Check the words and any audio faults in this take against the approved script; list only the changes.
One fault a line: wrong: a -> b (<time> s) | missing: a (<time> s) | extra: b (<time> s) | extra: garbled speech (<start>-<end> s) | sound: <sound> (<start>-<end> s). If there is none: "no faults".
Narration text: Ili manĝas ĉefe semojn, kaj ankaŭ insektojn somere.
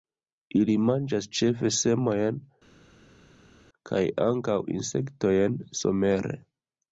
no faults